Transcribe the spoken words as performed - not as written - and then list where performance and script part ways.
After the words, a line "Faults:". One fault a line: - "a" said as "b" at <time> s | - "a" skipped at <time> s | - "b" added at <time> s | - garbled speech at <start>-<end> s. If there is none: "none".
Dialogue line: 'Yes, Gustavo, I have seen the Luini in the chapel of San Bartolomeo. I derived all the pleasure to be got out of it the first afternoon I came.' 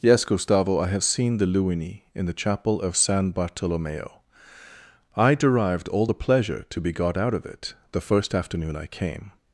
'Yes, Gustavo, I have seen the Luini in the chapel of San Bartolomeo. I derived all the pleasure to be got out of it the first afternoon I came.'
Faults:
none